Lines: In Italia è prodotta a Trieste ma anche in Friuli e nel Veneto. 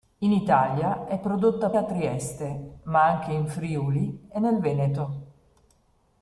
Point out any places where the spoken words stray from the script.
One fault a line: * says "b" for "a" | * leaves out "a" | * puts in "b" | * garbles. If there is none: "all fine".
all fine